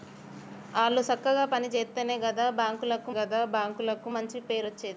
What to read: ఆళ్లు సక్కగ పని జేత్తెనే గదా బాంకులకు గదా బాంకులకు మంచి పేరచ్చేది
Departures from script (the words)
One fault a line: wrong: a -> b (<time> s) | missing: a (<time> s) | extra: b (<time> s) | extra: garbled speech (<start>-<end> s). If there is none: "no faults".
no faults